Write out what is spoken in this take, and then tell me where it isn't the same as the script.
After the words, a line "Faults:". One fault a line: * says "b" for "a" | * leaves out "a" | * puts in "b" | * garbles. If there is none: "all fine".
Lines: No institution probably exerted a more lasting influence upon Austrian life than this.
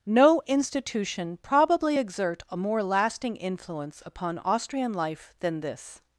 No institution probably exert a more lasting influence upon Austrian life than this.
Faults:
* says "exert" for "exerted"